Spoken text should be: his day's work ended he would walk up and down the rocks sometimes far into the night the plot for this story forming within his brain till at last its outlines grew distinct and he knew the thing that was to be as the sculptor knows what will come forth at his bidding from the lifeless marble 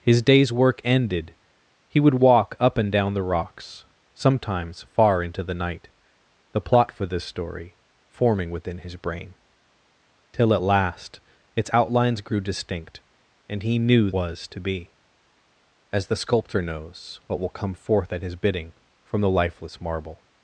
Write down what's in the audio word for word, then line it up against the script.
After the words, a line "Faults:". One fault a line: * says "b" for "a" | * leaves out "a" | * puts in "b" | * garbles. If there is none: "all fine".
his day's work ended he would walk up and down the rocks sometimes far into the night the plot for this story forming within his brain till at last its outlines grew distinct and he knew was to be as the sculptor knows what will come forth at his bidding from the lifeless marble
Faults:
* leaves out "the thing that"